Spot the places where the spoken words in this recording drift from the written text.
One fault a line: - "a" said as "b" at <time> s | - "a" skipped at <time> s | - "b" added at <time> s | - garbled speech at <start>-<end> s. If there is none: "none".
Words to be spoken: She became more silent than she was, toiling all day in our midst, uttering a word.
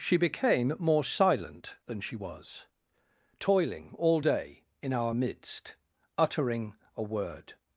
none